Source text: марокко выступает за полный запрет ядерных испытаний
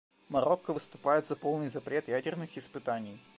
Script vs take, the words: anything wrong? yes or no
no